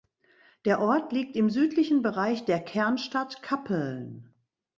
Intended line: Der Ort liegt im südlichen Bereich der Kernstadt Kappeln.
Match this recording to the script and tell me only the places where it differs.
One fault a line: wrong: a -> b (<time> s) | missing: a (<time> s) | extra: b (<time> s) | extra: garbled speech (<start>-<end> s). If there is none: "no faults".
no faults